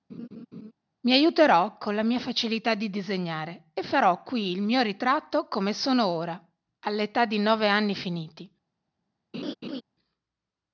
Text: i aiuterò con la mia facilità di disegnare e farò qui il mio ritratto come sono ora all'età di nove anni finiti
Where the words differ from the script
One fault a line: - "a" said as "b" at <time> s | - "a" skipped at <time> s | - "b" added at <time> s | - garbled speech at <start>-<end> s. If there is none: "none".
none